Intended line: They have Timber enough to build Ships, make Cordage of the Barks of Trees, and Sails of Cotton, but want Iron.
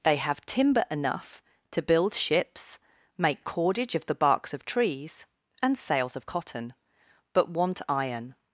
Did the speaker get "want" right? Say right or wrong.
right